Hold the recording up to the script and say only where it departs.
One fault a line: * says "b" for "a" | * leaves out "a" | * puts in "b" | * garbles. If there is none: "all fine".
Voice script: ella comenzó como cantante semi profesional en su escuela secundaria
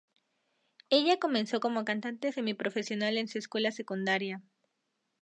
all fine